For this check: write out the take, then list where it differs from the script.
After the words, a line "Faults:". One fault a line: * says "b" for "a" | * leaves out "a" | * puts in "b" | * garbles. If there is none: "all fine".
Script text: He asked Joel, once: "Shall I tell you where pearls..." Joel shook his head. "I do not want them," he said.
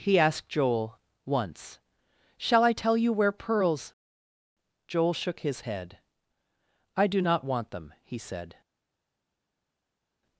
He asked Joel, once: "Shall I tell you where pearls..." Joel shook his head. "I do not want them," he said.
Faults:
all fine